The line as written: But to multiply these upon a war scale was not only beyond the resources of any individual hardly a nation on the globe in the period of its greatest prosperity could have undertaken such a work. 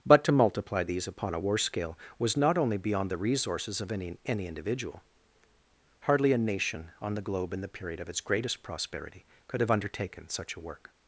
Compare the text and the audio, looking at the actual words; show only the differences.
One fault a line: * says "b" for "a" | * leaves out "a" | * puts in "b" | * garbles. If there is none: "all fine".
* puts in "any"